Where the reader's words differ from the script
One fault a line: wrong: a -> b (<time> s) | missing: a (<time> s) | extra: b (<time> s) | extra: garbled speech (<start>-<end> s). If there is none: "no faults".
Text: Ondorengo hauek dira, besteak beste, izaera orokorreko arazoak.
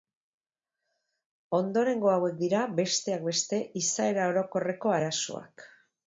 no faults